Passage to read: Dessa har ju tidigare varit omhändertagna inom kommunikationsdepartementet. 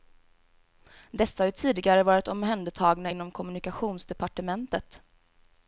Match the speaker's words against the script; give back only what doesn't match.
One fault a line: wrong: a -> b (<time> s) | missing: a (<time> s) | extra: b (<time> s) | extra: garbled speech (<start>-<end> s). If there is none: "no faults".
no faults